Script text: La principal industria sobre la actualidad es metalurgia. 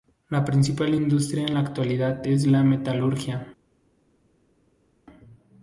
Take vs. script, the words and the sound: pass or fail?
fail